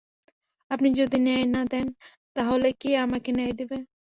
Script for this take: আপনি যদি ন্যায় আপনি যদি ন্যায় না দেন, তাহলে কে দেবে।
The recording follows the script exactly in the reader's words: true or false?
false